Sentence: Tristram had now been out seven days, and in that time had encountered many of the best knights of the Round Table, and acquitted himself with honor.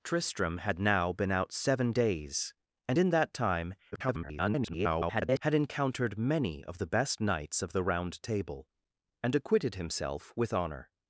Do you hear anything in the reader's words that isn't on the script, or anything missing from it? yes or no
yes